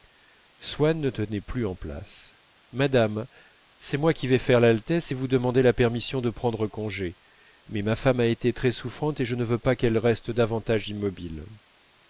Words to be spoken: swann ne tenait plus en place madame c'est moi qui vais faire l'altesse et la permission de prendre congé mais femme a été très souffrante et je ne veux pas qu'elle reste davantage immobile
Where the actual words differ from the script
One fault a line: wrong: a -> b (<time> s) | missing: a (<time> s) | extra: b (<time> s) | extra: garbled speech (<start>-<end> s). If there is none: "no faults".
extra: vous demander (5.1 s)
extra: ma (7.8 s)